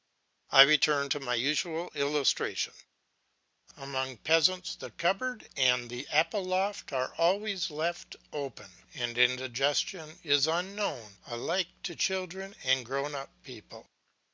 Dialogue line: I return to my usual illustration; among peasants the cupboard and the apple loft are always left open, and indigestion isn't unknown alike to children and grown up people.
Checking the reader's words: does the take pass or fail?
fail